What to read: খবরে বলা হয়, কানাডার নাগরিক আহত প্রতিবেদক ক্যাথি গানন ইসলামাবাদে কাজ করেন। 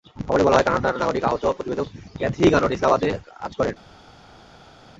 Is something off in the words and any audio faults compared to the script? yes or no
no